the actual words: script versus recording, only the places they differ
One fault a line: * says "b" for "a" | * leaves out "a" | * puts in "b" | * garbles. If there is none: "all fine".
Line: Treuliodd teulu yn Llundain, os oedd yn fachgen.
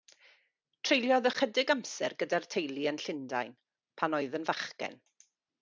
* puts in "ychydig amser gyda'r"
* says "pan" for "os"